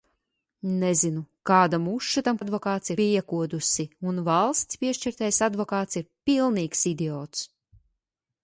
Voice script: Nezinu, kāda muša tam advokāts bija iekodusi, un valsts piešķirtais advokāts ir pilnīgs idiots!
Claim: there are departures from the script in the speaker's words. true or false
false